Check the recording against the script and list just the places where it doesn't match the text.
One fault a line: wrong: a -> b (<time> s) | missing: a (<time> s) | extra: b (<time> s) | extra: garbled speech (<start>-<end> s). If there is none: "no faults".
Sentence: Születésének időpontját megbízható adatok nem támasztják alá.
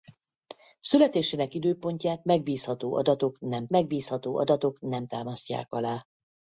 extra: megbízható adatok nem (3.7 s)